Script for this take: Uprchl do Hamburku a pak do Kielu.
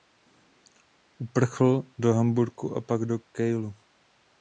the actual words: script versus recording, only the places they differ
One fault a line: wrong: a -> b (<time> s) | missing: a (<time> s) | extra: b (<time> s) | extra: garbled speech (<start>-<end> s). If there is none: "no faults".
no faults